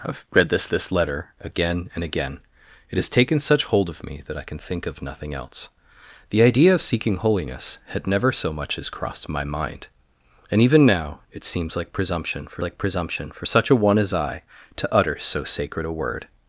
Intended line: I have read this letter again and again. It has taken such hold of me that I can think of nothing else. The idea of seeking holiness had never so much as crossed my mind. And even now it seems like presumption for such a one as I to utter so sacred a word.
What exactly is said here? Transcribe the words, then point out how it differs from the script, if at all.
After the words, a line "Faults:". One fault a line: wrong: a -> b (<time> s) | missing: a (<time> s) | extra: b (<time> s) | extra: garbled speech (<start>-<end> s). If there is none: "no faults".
I have read this this letter again and again. It has taken such hold of me that I can think of nothing else. The idea of seeking holiness had never so much as crossed my mind. And even now it seems like presumption for like presumption for such a one as I to utter so sacred a word.
Faults:
extra: this (0.7 s)
extra: like presumption for (12.6 s)